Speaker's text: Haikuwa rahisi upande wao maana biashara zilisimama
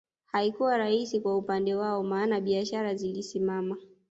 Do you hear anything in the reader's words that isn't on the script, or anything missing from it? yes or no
yes